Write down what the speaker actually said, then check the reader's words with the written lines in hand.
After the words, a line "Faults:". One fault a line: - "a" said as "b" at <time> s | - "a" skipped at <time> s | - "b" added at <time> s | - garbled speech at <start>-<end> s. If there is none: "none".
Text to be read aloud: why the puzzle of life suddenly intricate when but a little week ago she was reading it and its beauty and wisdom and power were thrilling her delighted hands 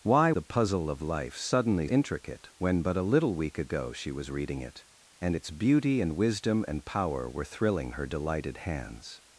why the puzzle of life suddenly intricate when but a little week ago she was reading it and its beauty and wisdom and power were thrilling her delighted hands
Faults:
none